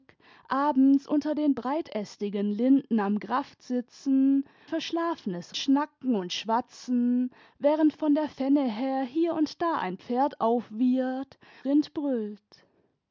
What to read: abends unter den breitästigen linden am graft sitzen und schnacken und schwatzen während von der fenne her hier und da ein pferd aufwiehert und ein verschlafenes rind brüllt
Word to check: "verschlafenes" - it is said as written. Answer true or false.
false